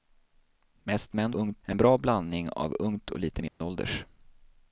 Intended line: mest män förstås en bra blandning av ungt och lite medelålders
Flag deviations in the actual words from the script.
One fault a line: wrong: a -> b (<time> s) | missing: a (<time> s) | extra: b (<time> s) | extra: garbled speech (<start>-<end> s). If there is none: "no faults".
wrong: förstås -> ungt (1.3 s)